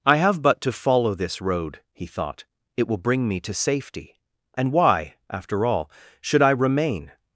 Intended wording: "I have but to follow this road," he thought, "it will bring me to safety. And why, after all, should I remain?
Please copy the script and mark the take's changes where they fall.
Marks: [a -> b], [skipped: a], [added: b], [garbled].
"I have but to follow this road," he thought, "it will bring me to safety. And why, after all, should I remain?